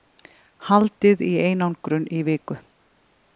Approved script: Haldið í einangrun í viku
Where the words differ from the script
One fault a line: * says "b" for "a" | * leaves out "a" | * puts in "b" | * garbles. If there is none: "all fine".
all fine